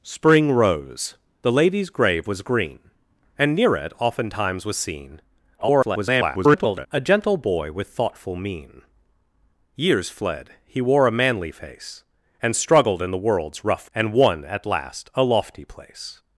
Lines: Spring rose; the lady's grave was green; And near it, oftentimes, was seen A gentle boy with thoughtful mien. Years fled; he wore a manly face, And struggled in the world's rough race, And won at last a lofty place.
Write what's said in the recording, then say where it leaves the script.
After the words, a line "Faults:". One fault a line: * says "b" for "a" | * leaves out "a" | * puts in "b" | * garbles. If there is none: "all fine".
Spring rose; the lady's grave was green; And near it, oftentimes, was seen [garbled] A gentle boy with thoughtful mien. Years fled; he wore a manly face, And struggled in the world's rough And won at last a lofty place.
Faults:
* garbles
* leaves out "race"